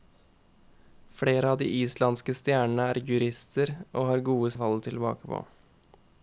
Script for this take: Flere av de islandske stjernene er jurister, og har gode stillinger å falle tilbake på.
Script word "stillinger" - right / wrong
wrong